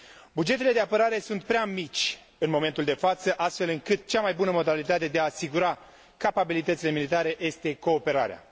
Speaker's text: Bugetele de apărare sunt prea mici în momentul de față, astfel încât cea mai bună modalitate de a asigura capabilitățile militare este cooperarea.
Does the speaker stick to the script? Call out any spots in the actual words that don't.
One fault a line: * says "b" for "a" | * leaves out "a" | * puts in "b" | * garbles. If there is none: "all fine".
all fine